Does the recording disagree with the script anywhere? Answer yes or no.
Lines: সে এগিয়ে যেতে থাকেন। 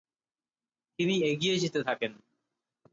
yes